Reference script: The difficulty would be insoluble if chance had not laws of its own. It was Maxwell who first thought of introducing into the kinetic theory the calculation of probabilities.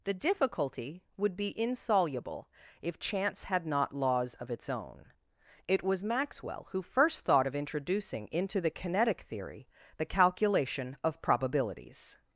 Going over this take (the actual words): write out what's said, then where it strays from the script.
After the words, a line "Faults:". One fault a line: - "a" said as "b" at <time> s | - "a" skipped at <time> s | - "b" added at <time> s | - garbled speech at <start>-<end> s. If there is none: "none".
The difficulty would be insoluble if chance had not laws of its own. It was Maxwell who first thought of introducing into the kinetic theory the calculation of probabilities.
Faults:
none